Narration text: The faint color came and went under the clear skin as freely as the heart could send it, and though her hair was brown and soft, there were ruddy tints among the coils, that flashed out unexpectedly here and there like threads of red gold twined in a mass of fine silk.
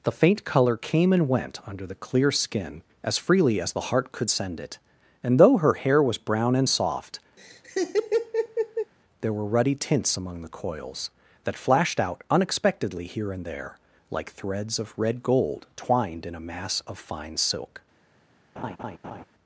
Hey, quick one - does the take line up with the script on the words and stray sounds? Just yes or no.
no